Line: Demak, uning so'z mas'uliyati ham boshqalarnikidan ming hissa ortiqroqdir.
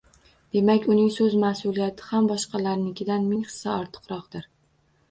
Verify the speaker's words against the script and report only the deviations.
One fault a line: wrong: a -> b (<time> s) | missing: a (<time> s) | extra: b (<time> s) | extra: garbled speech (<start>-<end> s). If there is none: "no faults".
no faults